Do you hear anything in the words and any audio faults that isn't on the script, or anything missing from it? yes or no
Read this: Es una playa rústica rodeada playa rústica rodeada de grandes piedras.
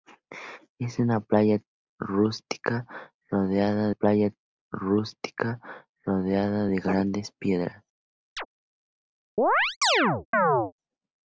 yes